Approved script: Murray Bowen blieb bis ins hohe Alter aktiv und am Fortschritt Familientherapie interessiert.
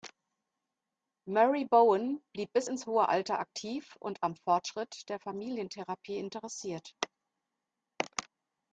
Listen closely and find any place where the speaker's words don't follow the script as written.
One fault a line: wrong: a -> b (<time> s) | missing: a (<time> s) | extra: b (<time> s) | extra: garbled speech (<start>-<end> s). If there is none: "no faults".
extra: der (5.1 s)